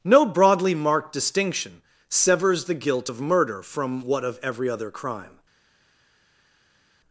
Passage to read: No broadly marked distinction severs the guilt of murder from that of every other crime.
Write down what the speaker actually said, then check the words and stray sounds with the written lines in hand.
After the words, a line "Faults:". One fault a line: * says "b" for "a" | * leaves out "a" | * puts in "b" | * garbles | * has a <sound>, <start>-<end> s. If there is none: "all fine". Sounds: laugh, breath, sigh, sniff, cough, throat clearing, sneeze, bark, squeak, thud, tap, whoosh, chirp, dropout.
No broadly marked distinction severs the guilt of murder from what of every other crime.
Faults:
* says "what" for "that"